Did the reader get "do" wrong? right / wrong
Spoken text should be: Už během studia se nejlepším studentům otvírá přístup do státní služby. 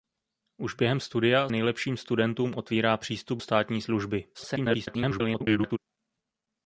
wrong